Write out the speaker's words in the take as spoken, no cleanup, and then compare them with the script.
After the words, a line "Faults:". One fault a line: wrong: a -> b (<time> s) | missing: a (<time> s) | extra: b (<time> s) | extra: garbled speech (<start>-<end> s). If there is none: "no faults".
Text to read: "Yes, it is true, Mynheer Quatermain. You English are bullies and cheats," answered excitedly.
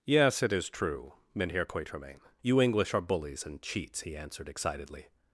"Yes, it is true, Mynheer Quatermain. You English are bullies and cheats," he answered excitedly.
Faults:
extra: he (4.0 s)